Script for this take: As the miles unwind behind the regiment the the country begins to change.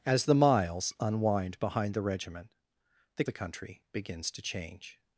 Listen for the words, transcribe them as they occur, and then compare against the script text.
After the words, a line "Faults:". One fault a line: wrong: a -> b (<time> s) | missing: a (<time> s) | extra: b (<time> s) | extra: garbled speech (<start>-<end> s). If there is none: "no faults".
As the miles unwind behind the regiment the the country begins to change.
Faults:
no faults